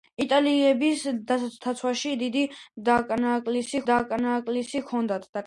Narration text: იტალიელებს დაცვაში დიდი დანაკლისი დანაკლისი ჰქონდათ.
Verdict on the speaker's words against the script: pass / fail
pass